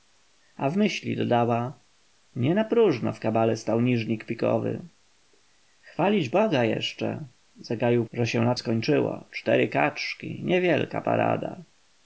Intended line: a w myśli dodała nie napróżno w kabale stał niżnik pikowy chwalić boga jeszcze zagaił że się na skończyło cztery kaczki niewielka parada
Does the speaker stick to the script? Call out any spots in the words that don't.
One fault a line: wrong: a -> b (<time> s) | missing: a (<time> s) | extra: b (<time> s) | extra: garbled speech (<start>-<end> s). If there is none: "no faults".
no faults